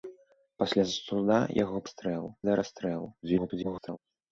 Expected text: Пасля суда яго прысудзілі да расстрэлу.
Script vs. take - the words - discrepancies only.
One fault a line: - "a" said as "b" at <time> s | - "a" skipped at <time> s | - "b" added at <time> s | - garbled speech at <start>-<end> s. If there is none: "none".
- "прысудзілі" said as "расстрэлу" at 1.9 s
- garbled speech at 3.2-4.0 s